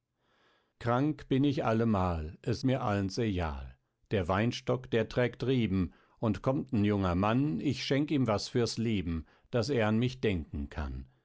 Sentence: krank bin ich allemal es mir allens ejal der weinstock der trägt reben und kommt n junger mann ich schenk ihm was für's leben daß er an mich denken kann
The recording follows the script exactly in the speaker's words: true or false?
true